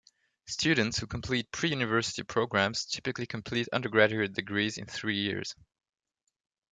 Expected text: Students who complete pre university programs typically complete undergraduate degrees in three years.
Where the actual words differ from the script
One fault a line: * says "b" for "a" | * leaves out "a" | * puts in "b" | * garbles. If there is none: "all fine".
all fine